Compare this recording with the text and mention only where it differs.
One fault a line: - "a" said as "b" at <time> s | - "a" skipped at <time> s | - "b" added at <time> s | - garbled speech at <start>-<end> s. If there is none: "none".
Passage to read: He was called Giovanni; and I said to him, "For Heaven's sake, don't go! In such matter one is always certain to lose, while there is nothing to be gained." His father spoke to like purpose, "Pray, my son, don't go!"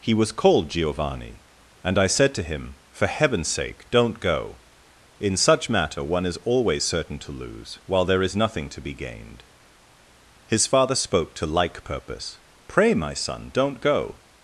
none